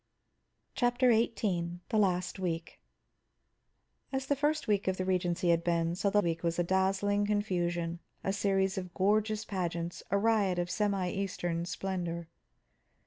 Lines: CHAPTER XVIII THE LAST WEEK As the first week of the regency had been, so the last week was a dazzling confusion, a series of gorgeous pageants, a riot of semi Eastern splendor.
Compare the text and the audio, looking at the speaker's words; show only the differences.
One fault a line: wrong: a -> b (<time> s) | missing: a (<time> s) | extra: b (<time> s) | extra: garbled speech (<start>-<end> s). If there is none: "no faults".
missing: last (6.2 s)